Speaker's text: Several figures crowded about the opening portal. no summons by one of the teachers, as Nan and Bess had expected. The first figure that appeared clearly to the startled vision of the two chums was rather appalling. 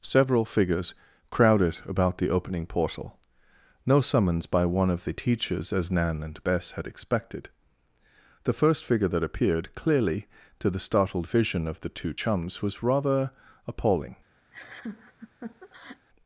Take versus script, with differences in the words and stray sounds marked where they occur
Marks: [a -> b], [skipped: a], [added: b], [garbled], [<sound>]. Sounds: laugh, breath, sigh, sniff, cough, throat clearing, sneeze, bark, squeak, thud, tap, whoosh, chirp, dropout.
Several figures crowded about the opening portal. no summons by one of the teachers, as Nan and Bess had expected. The first figure that appeared clearly to the startled vision of the two chums was rather appalling. [laugh]